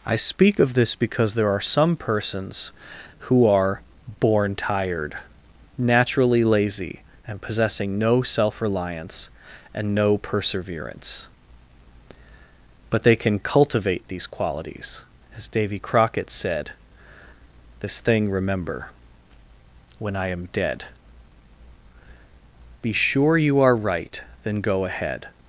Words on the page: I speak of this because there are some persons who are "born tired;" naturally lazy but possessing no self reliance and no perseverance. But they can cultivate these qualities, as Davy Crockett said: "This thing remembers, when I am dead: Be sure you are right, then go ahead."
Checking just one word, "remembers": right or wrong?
wrong